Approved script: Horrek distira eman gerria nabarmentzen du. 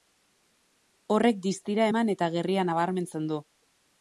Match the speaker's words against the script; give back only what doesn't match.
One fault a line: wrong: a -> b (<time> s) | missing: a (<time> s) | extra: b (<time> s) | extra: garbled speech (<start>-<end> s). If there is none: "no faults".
extra: eta (2.2 s)